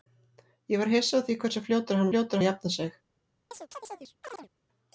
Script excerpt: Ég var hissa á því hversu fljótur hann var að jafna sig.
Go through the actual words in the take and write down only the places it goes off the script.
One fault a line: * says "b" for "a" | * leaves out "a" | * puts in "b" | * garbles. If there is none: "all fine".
* says "fljótur" for "var"